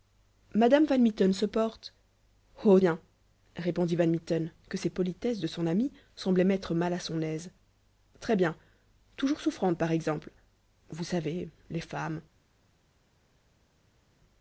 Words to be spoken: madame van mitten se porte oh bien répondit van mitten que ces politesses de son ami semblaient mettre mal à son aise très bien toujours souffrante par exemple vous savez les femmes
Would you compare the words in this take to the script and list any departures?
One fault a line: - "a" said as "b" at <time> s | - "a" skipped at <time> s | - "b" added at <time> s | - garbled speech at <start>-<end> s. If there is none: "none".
none